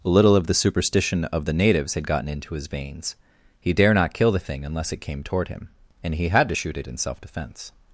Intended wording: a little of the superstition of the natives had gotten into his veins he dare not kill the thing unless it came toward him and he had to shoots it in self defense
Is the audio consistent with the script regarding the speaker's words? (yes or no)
no